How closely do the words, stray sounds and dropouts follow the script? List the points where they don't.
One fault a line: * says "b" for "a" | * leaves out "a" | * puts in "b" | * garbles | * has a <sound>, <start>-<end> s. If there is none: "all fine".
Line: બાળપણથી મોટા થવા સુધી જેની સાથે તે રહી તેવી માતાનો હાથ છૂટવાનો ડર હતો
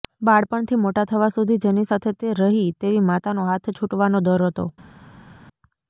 all fine